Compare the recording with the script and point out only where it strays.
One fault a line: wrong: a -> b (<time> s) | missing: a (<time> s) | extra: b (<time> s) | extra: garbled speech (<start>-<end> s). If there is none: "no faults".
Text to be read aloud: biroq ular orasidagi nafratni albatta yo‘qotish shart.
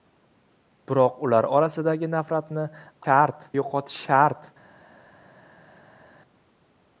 wrong: albatta -> shart (3.0 s)